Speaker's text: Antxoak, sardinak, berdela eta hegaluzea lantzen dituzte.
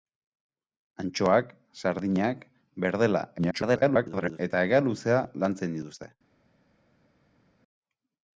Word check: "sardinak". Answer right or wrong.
right